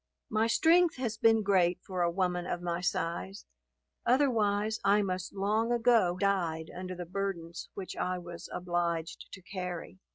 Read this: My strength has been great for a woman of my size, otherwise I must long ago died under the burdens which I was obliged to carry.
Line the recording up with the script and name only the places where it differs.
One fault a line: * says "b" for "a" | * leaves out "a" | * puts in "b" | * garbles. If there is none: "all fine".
all fine